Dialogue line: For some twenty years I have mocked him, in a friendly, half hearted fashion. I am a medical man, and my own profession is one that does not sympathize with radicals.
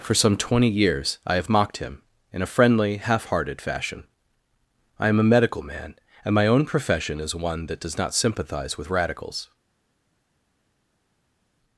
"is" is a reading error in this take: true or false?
false